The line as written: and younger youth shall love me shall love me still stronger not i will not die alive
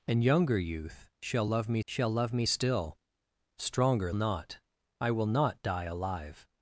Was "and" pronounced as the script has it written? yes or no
yes